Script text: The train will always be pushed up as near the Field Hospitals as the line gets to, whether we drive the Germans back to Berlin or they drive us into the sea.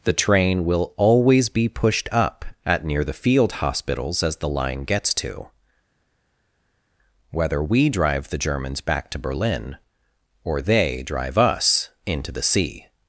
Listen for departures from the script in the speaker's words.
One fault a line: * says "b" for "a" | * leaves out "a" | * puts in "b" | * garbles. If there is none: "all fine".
* says "at" for "as"